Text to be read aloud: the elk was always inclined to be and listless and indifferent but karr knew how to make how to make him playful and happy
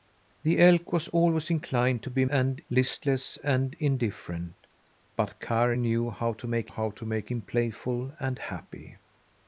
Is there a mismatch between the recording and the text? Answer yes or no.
no